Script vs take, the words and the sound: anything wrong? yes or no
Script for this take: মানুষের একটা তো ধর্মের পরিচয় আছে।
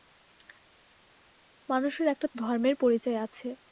no